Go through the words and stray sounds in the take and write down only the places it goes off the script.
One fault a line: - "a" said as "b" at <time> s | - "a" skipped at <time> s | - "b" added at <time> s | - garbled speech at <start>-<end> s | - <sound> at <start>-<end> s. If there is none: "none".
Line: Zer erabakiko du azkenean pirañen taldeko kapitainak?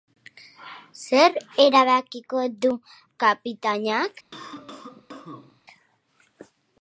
- "azkenean pirañen taldeko" skipped at 2.7 s
- cough at 4.3-5.6 s